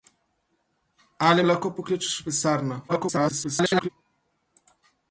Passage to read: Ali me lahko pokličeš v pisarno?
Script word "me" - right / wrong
wrong